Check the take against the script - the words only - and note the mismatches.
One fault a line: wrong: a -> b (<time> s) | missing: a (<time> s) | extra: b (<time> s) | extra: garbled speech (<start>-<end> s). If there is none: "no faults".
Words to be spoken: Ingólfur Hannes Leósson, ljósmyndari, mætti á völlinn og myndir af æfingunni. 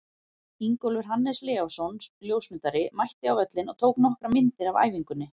extra: tók nokkrar (3.8 s)